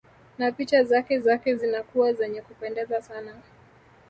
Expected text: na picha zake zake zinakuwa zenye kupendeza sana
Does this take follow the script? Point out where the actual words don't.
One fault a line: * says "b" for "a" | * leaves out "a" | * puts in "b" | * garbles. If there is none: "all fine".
all fine